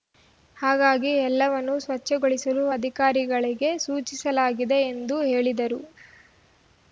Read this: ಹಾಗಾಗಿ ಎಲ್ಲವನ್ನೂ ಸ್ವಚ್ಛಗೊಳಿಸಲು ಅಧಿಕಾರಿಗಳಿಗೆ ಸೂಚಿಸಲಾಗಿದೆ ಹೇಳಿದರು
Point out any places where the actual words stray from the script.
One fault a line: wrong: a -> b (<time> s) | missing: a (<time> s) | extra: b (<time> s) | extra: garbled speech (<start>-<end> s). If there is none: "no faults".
extra: ಎಂದು (4.9 s)